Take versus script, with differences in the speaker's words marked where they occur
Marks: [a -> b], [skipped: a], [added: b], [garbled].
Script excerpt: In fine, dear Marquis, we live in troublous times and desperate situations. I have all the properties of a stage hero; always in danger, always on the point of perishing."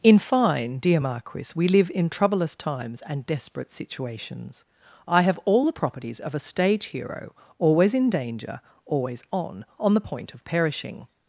In fine, dear Marquis, we live in troublous times and desperate situations. I have all the properties of a stage hero; always in danger, always on [added: on] the point of perishing."